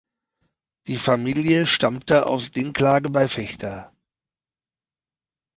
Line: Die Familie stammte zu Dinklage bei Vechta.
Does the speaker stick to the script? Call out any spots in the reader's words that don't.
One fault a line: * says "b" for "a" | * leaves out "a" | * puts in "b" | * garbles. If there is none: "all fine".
* says "aus" for "zu"